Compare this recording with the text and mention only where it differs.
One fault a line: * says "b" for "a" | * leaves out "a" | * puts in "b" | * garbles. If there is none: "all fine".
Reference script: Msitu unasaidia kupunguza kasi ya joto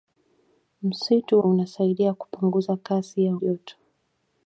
all fine